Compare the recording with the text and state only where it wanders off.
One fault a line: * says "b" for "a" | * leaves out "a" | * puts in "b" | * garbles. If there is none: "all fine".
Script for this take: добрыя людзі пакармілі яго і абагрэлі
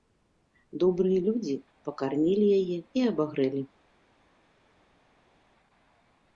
* says "яе" for "яго"